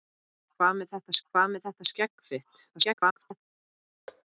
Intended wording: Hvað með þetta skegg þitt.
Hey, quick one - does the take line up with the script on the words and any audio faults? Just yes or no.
no